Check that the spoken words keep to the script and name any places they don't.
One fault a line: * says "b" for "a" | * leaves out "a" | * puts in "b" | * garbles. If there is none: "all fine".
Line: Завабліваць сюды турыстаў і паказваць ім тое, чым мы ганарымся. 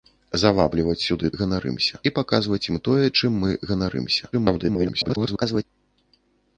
* says "ганарымся" for "турыстаў"
* garbles